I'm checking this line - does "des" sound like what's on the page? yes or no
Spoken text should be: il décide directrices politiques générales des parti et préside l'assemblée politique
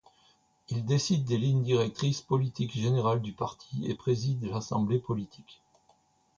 no